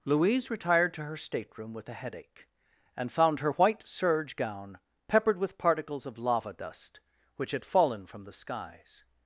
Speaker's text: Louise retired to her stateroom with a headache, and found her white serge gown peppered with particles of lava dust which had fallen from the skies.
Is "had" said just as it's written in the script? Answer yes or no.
yes